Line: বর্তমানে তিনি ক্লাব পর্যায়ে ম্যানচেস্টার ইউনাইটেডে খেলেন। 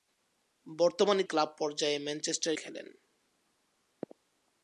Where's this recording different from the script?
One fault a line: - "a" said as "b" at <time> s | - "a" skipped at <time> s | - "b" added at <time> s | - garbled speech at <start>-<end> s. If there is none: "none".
- "তিনি" skipped at 1.2 s
- "ইউনাইটেডে" skipped at 2.5 s